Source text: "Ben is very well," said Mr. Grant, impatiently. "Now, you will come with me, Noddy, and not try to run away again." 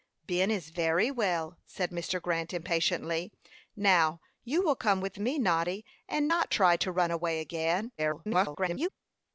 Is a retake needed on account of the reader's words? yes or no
yes